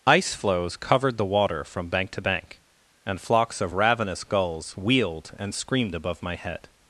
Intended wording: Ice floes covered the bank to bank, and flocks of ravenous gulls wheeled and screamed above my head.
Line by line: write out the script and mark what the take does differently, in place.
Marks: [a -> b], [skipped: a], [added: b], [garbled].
Ice floes covered the [added: water from] bank to bank, and flocks of ravenous gulls wheeled and screamed above my head.